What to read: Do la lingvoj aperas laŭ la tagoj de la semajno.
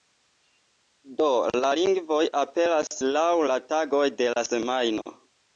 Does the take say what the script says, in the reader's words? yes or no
yes